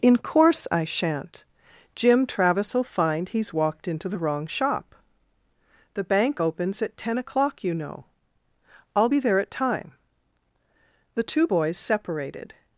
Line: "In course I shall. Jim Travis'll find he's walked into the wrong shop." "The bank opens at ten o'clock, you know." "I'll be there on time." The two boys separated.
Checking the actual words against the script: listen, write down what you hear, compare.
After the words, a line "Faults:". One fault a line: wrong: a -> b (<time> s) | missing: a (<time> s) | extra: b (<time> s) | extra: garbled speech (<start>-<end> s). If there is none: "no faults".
"In course I shan't. Jim Travis'll find he's walked into the wrong shop." "The bank opens at ten o'clock, you know." "I'll be there at time." The two boys separated.
Faults:
wrong: shall -> shan't (0.8 s)
wrong: on -> at (9.4 s)